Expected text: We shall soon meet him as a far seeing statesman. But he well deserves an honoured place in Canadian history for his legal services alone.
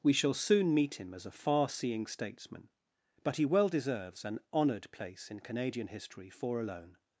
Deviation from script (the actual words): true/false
true